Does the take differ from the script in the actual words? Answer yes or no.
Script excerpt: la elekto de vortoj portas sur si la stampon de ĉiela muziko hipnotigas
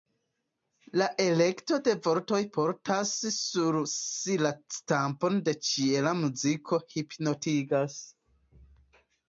no